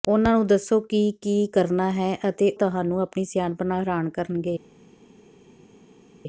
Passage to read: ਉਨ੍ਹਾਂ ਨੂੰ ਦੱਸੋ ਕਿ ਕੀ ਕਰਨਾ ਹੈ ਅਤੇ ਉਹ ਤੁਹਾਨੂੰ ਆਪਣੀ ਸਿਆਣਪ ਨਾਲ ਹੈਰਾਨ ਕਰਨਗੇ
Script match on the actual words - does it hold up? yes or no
no